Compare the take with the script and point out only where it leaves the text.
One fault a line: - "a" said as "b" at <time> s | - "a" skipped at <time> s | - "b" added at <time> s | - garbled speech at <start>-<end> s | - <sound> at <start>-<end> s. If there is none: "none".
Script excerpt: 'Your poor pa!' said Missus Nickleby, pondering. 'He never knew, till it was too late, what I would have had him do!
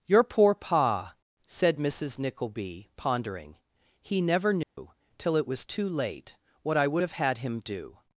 - dropout at 4.6-4.8 s